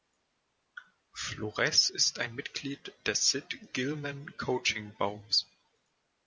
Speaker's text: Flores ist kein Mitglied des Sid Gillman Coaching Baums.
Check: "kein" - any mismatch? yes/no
yes